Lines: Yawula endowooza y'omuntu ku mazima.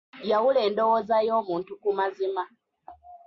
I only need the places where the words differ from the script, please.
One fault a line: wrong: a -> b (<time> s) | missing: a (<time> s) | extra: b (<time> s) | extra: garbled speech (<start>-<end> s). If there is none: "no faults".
no faults